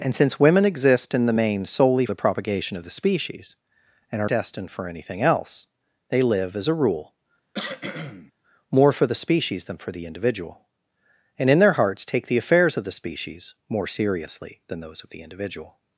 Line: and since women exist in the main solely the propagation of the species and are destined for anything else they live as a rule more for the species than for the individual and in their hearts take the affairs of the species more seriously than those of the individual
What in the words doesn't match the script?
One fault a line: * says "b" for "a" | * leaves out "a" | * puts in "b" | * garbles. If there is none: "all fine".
all fine